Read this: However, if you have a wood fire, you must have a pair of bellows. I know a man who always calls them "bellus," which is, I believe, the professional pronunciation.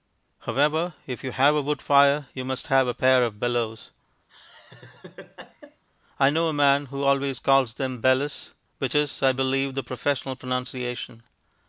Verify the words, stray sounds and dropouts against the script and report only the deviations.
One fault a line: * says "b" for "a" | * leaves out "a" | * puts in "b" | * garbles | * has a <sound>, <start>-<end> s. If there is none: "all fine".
* has a laugh, 4.3-5.8 s